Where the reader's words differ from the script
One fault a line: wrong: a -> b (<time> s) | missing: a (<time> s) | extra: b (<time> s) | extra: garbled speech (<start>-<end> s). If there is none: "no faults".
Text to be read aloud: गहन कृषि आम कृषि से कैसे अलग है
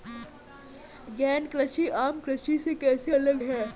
no faults